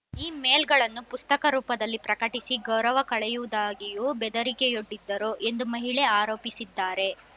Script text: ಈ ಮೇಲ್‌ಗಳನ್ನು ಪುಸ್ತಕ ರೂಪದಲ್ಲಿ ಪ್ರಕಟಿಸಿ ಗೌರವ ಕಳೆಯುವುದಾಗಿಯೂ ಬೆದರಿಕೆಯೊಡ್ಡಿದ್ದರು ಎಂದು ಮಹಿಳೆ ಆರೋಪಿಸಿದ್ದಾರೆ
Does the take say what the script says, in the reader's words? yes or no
yes